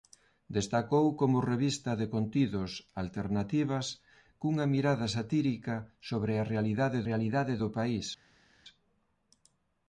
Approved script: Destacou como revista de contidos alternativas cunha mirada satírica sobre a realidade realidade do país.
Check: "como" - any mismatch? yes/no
no